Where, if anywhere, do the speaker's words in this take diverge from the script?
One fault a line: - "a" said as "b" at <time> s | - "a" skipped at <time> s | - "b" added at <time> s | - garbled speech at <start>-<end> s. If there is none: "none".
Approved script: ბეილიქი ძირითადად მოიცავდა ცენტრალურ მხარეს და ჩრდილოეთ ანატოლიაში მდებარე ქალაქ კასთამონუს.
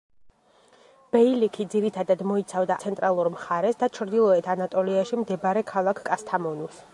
none